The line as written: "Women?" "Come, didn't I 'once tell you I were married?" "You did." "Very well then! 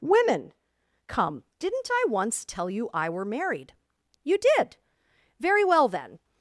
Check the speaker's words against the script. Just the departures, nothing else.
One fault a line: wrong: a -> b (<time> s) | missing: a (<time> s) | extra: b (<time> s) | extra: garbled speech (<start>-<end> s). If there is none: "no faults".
no faults